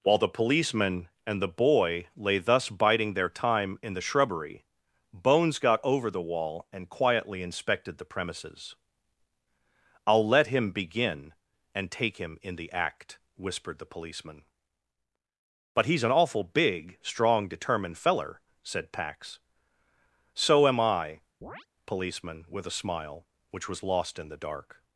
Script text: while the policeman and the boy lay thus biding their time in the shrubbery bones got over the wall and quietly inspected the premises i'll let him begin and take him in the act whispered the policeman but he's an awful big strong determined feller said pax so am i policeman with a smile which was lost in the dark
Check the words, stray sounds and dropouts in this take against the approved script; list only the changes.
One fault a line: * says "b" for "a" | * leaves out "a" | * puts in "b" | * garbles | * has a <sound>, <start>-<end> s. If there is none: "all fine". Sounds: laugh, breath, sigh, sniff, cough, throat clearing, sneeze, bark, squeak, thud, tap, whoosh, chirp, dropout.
* has a chirp, 21.4-21.7 s